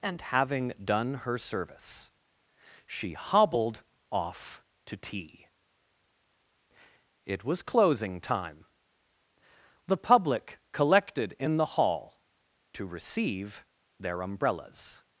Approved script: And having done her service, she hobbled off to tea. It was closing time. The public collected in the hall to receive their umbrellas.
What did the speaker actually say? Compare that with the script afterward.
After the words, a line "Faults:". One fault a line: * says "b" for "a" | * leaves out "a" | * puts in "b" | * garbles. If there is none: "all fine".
And having done her service, she hobbled off to tea. It was closing time. The public collected in the hall to receive their umbrellas.
Faults:
all fine